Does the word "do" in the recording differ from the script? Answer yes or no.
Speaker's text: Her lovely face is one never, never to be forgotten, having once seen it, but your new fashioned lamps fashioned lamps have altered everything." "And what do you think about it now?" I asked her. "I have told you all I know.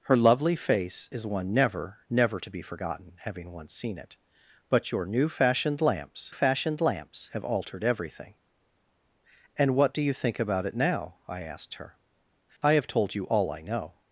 no